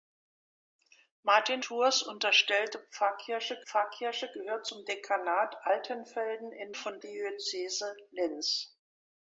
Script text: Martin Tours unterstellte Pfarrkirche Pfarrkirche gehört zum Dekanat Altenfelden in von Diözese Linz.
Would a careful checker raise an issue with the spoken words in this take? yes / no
no